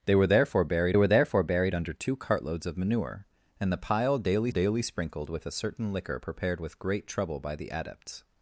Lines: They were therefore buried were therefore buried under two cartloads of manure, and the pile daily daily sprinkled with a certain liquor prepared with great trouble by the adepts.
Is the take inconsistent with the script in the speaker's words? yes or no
no